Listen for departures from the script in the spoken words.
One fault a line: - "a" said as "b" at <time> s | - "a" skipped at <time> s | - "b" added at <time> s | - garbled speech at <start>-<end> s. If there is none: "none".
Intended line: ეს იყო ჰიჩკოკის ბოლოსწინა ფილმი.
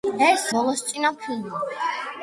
- "იყო ჰიჩკოკის" skipped at 0.5 s